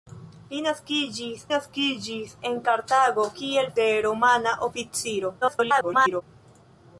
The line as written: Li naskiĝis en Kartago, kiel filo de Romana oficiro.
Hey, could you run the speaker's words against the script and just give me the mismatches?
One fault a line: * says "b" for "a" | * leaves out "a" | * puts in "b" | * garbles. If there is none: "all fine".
* puts in "naskiĝis"
* leaves out "filo"
* garbles